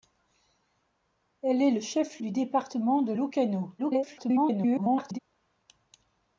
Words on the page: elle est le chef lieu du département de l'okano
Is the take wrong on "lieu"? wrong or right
wrong